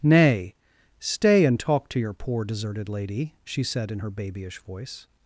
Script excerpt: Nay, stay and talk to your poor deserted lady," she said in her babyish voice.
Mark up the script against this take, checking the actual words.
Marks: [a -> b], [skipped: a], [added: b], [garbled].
Nay, stay and talk to your poor deserted lady," she said in her babyish voice.